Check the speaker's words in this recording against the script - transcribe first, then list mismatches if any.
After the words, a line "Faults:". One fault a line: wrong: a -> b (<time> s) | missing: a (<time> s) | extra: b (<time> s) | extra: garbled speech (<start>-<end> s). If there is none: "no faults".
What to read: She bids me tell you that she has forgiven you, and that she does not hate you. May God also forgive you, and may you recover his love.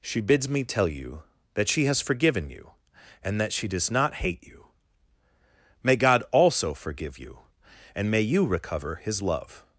She bids me tell you that she has forgiven you, and that she does not hate you. May God also forgive you, and may you recover his love.
Faults:
no faults